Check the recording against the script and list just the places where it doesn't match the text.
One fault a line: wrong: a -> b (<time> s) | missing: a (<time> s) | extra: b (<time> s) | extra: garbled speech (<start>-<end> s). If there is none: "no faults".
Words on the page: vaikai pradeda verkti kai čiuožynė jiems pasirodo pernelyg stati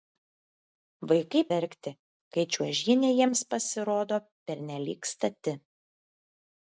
missing: pradeda (1.4 s)